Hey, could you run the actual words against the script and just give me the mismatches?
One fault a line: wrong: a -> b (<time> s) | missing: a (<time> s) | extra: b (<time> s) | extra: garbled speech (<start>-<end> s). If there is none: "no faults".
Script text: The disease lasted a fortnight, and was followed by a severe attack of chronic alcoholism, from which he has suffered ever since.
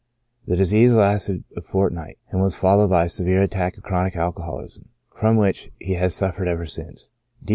no faults